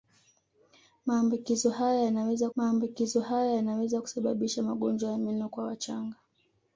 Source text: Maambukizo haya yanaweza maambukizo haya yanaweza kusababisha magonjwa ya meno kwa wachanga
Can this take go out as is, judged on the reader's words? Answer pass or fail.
pass